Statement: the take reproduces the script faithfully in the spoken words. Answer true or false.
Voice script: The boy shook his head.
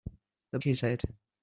false